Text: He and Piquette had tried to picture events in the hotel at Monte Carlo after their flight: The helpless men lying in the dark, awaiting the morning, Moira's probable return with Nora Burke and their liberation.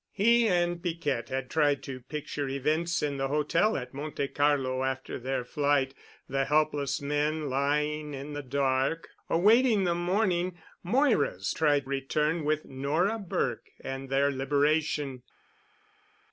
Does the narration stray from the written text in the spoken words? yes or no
yes